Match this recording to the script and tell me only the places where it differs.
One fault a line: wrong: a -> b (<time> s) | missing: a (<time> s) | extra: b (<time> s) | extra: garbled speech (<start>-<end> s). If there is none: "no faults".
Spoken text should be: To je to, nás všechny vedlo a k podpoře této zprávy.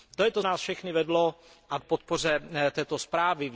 no faults